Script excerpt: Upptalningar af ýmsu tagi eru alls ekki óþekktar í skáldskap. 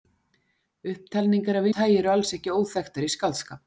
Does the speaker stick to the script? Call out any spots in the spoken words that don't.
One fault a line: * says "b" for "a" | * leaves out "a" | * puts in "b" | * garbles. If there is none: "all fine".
* leaves out "ýmsu"